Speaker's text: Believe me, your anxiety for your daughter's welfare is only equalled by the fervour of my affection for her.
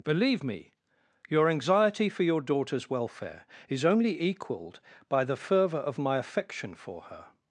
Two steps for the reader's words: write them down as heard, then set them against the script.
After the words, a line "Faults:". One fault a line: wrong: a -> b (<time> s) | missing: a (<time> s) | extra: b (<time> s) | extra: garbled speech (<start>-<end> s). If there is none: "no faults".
Believe me, your anxiety for your daughter's welfare is only equalled by the fervour of my affection for her.
Faults:
no faults